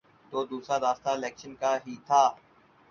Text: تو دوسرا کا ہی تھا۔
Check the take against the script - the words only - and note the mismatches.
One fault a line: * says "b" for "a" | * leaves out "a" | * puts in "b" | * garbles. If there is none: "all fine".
* puts in "راستہ الیکشن"